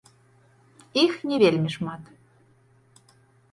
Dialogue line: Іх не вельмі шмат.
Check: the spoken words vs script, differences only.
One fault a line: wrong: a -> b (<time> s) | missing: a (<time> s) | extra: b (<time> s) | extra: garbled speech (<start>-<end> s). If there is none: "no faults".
no faults